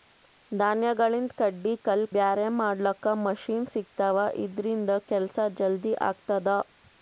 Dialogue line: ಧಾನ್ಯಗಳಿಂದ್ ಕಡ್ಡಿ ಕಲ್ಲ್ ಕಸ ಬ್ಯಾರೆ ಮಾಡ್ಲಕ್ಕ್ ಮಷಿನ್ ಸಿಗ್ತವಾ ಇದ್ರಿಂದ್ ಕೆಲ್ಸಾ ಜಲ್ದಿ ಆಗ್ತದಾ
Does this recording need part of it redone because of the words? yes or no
yes